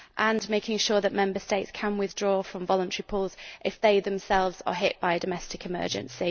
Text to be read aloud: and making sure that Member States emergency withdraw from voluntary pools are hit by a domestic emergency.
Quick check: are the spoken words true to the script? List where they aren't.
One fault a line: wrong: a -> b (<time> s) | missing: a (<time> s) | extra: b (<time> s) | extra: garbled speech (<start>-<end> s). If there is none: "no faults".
wrong: emergency -> can (1.7 s)
extra: if they themselves (3.6 s)